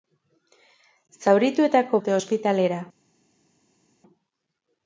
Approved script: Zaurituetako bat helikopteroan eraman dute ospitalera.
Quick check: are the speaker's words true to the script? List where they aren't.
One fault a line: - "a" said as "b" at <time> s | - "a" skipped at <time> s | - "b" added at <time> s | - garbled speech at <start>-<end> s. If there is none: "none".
- "bat helikopteroan eraman" skipped at 2.0 s